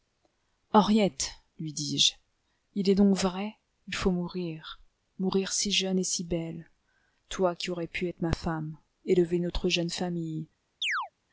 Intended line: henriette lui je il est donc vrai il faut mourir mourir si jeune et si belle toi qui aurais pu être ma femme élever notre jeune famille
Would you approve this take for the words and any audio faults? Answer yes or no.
no